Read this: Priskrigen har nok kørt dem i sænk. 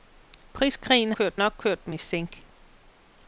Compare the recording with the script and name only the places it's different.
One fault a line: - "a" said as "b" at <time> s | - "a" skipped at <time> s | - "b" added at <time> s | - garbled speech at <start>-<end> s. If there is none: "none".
- "har" said as "kørt" at 1.1 s